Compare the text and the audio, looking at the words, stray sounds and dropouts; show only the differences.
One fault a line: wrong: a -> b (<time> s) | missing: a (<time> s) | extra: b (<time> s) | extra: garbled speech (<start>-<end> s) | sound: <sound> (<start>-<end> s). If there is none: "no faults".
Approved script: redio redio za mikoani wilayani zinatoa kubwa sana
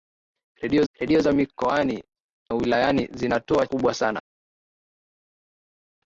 no faults